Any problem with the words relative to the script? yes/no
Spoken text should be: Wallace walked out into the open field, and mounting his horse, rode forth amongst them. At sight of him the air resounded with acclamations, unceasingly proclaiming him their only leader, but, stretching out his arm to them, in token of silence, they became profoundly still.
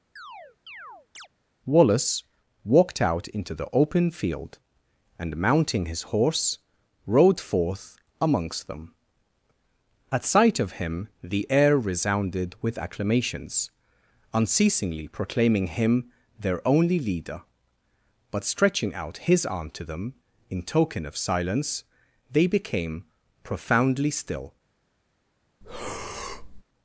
no